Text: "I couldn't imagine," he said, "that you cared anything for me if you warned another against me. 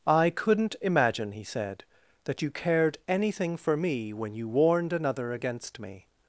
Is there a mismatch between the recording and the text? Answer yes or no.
yes